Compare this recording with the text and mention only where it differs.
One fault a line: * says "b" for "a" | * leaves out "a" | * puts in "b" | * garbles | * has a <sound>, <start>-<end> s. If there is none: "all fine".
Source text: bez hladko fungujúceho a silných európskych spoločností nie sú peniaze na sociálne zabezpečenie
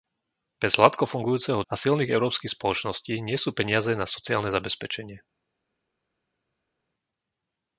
all fine